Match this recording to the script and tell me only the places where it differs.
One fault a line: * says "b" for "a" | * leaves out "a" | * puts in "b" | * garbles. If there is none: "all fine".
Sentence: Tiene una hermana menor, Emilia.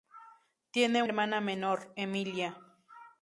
* leaves out "una"